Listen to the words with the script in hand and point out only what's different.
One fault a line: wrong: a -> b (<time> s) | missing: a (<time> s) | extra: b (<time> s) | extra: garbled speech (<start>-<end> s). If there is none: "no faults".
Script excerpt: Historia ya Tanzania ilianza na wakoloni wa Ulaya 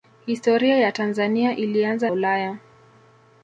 missing: na wakoloni wa (2.1 s)